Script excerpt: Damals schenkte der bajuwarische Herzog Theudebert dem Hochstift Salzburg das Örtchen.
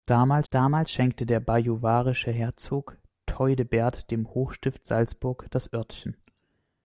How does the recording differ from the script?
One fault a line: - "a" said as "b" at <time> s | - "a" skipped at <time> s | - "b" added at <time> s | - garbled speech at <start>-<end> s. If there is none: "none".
- "damals" added at 0.5 s